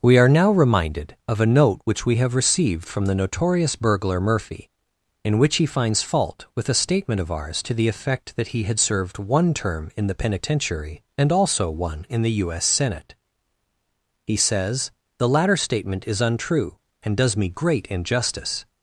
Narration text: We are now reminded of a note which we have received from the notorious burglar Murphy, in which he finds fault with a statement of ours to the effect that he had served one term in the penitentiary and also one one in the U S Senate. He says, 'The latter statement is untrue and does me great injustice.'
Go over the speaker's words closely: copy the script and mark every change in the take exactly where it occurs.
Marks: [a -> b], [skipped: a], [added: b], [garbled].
We are now reminded of a note which we have received from the notorious burglar Murphy, in which he finds fault with a statement of ours to the effect that he had served one term in the penitentiary and also one [skipped: one] in the U S Senate. He says, 'The latter statement is untrue and does me great injustice.'